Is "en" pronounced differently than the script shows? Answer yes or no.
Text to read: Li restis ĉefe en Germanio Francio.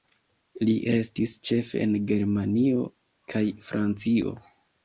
no